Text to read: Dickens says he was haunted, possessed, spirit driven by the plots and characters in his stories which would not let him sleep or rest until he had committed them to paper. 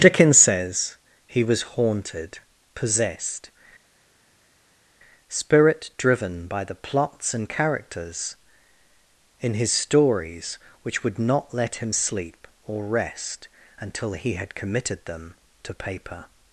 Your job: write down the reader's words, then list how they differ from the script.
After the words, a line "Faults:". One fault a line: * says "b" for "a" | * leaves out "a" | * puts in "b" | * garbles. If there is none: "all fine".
Dickens says he was haunted, possessed, spirit driven by the plots and characters in his stories which would not let him sleep or rest until he had committed them to paper.
Faults:
all fine